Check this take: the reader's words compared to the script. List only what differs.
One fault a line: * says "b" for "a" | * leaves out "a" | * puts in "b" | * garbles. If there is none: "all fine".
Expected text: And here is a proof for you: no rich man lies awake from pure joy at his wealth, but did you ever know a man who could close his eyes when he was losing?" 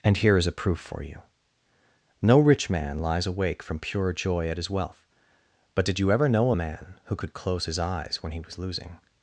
all fine